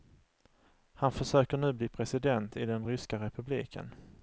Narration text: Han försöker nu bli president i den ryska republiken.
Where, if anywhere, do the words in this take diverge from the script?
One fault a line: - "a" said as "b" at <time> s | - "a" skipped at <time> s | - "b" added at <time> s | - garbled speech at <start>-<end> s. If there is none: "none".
none